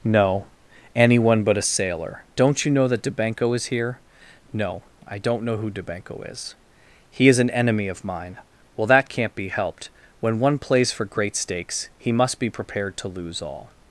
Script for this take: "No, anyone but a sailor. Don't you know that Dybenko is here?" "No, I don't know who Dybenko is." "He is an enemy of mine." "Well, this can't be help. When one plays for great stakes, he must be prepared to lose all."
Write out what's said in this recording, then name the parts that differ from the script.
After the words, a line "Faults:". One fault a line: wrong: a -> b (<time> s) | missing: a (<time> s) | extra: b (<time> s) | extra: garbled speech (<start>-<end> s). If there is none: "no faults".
"No, anyone but a sailor. Don't you know that Dybenko is here?" "No, I don't know who Dybenko is." "He is an enemy of mine." "Well, that can't be helped. When one plays for great stakes, he must be prepared to lose all."
Faults:
wrong: this -> that (8.9 s)
wrong: help -> helped (9.5 s)